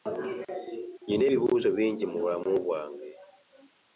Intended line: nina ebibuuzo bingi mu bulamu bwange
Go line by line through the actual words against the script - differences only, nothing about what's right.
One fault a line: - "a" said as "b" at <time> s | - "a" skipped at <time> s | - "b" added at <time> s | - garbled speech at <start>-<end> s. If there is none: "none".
none